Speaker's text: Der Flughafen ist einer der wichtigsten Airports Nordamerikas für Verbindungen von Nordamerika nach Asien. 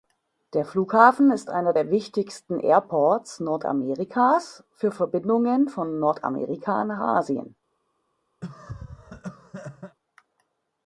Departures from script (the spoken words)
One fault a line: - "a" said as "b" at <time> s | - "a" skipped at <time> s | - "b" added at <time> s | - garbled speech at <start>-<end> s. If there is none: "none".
none